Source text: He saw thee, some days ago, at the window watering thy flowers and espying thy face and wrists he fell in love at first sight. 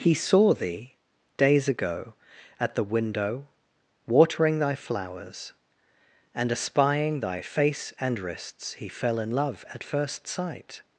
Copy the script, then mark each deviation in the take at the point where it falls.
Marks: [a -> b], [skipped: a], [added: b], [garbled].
He saw thee, [skipped: some] days ago, at the window watering thy flowers and espying thy face and wrists he fell in love at first sight.